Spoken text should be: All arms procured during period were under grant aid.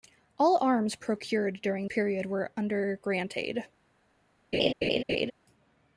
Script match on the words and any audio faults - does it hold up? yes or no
no